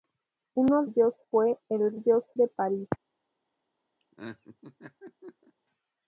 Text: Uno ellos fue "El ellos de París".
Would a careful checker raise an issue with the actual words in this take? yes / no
no